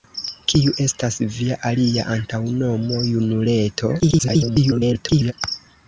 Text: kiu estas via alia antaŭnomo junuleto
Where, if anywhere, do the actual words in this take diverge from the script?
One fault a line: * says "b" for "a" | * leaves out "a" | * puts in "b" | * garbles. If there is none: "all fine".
* garbles